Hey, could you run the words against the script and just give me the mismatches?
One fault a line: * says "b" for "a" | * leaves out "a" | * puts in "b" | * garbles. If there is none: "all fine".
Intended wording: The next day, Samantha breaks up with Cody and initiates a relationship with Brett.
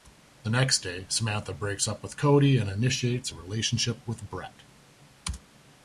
all fine